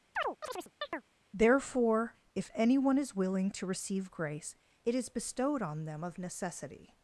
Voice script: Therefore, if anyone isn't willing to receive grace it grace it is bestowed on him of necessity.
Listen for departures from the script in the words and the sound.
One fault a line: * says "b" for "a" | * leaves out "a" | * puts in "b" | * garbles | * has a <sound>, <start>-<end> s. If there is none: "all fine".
* has a chirp, 0.2-1.0 s
* says "is" for "isn't"
* leaves out "grace it"
* says "them" for "him"